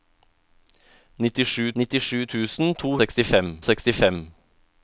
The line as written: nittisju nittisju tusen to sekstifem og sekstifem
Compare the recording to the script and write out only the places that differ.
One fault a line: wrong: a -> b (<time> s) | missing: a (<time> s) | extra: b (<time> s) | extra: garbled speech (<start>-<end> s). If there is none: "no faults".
no faults